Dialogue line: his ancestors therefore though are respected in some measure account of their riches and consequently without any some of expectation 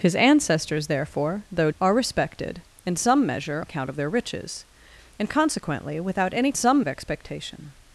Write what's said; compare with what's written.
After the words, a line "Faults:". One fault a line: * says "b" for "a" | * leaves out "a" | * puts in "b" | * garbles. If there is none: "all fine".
his ancestors therefore though are respected in some measure account of their riches and consequently without any some of expectation
Faults:
all fine